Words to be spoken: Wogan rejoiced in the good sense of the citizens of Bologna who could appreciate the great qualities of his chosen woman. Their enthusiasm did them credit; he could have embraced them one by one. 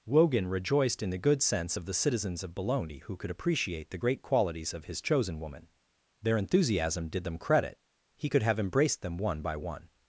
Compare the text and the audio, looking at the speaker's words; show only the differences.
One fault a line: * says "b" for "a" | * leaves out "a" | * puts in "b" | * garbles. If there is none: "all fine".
all fine